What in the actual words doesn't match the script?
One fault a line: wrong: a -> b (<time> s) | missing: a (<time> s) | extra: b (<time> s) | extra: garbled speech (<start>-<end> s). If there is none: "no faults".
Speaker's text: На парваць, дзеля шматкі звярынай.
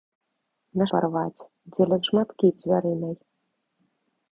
no faults